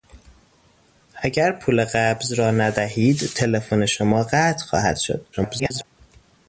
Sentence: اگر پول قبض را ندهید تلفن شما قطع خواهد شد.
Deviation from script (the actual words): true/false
true